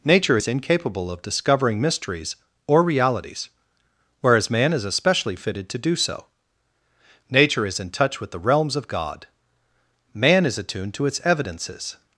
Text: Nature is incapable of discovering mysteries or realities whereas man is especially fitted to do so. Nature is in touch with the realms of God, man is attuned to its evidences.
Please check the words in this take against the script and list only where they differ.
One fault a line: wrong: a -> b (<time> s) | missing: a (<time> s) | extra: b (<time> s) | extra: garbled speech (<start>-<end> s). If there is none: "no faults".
no faults